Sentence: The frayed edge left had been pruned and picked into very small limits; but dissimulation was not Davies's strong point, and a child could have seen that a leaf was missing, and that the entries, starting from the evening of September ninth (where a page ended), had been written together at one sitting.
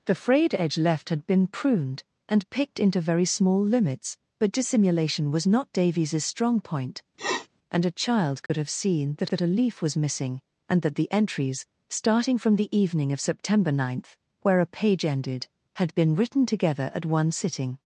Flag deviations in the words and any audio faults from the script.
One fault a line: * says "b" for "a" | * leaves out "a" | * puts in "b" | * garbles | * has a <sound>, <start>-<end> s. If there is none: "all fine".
* has a sniff, 7.2-7.5 s
* has a dropout, 8.5-8.5 s
* puts in "that"